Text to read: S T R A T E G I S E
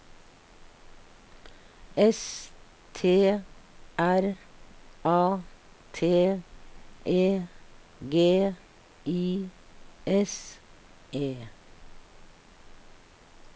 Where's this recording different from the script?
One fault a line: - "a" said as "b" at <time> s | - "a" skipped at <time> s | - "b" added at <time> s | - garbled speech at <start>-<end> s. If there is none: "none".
none